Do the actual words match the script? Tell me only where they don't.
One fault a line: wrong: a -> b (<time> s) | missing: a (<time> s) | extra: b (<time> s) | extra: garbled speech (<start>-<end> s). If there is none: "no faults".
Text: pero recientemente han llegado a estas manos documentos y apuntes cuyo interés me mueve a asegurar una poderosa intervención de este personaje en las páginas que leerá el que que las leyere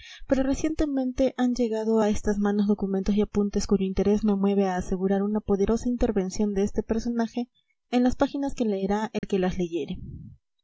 missing: que (9.4 s)